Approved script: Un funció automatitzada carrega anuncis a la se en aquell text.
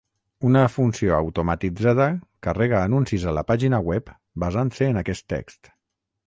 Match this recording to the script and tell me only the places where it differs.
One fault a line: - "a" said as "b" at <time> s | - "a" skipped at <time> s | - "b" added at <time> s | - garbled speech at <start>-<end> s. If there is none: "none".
- "Un" said as "Una" at 0.5 s
- "pàgina web basant" added at 3.5 s
- "aquell" said as "aquest" at 5.0 s